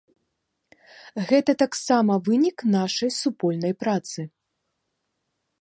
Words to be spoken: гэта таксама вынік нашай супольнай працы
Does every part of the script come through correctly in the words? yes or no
yes